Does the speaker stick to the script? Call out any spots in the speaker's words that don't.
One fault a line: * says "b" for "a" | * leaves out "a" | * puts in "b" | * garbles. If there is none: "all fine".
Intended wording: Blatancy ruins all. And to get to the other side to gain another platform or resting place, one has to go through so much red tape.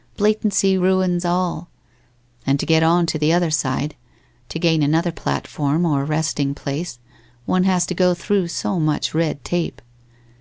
* puts in "on"